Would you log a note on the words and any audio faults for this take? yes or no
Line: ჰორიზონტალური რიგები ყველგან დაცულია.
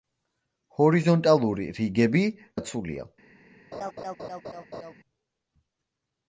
yes